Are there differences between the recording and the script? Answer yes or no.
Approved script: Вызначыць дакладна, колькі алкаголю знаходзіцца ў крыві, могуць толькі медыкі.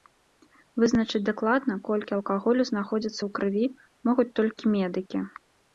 no